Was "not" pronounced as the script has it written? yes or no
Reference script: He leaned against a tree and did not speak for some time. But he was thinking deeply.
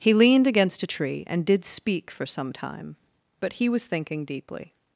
no